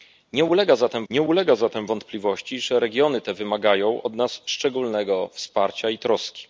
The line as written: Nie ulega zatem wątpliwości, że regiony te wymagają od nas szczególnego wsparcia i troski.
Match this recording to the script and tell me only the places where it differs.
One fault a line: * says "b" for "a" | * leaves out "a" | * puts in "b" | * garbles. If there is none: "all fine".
* puts in "nie ulega zatem"